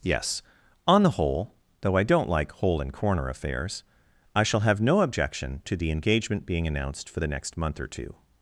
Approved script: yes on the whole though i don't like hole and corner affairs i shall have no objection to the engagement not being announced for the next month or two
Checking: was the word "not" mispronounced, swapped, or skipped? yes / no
yes